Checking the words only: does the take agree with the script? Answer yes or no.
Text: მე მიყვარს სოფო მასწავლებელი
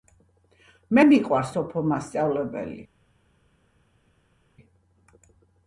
yes